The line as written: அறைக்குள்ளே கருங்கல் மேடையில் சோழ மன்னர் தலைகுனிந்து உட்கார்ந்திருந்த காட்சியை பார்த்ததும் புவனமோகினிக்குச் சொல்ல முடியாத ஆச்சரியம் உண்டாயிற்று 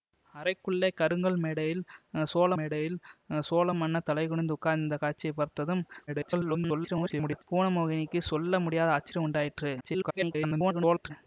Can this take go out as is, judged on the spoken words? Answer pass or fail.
fail